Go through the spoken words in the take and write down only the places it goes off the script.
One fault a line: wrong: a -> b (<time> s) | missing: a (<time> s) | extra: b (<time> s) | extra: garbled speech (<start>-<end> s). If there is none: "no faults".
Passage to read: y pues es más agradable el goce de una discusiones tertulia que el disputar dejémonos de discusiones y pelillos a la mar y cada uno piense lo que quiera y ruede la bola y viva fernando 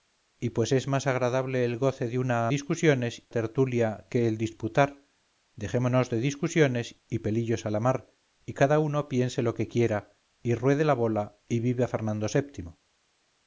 no faults